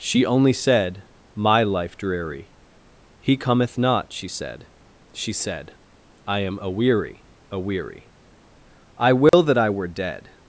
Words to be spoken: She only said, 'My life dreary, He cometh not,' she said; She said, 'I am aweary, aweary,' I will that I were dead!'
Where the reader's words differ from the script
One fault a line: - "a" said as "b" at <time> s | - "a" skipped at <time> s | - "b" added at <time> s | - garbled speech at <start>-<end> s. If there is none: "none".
none